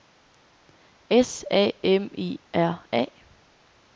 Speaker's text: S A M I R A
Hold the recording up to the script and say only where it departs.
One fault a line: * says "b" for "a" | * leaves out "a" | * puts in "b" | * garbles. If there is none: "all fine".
all fine